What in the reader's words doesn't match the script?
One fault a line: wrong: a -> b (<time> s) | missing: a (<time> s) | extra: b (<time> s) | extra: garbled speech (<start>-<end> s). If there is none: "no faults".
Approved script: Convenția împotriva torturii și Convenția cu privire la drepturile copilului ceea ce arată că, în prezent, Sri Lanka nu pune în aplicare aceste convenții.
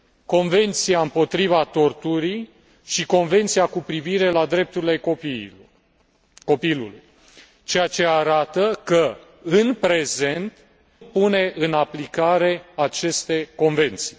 missing: Sri Lanka nu (10.6 s)